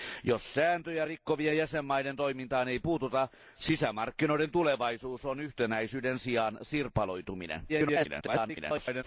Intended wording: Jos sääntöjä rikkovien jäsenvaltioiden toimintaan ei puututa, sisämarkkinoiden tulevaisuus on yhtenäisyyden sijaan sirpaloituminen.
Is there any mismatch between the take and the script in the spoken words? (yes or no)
yes